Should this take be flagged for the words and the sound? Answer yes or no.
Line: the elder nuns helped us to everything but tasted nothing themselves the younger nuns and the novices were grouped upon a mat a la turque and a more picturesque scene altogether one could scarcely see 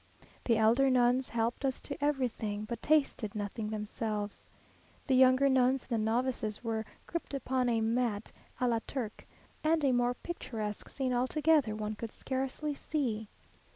no